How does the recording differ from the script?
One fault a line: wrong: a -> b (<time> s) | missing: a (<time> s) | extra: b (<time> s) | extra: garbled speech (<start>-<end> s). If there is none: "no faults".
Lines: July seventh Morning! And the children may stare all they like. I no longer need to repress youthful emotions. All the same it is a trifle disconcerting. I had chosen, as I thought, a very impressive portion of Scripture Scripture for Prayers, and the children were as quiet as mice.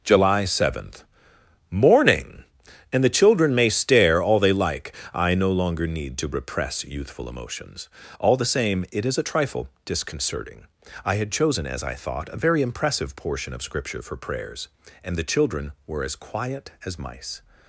missing: Scripture (14.0 s)